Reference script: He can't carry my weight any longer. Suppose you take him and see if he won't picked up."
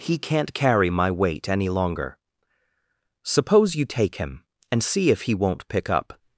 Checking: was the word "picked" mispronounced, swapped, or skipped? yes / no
yes